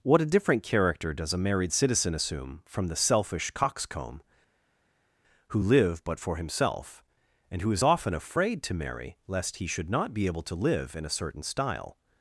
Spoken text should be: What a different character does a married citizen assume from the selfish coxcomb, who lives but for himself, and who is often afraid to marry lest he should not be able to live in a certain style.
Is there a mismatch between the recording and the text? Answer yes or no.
yes